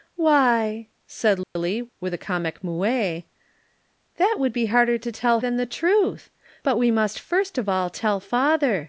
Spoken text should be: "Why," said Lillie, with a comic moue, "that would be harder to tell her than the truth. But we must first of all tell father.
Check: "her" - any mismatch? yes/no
yes